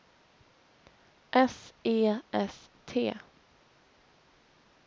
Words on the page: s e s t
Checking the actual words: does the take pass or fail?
pass